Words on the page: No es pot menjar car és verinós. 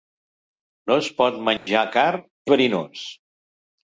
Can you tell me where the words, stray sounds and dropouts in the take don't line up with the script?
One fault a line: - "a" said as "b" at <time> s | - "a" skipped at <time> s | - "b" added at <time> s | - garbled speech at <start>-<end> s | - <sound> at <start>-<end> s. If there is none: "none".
- dropout at 1.6-1.7 s
- "és" skipped at 2.1 s